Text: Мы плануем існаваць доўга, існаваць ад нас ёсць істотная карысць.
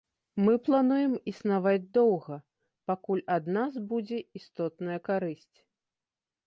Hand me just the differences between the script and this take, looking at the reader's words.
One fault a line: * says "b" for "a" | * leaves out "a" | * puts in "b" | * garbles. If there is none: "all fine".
* says "пакуль" for "існаваць"
* says "будзе" for "ёсць"